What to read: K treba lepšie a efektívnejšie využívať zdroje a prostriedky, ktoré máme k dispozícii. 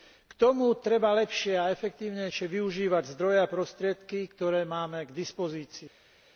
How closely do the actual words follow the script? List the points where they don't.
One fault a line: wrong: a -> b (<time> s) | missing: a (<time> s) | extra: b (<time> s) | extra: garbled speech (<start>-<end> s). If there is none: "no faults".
extra: tomu (0.3 s)